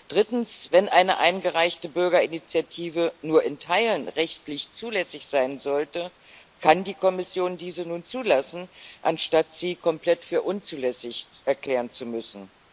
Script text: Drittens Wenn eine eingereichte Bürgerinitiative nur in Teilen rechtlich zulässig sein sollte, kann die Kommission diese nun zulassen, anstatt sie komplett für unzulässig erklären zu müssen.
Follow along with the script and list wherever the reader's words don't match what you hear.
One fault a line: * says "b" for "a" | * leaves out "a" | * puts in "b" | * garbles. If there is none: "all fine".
all fine